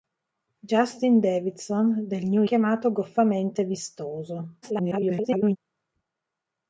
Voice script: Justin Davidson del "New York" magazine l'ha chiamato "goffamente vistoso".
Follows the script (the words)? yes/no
no